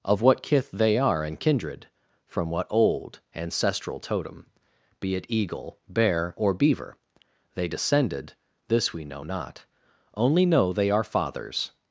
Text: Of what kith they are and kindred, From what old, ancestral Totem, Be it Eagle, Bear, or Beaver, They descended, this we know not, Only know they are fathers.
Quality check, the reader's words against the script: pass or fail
pass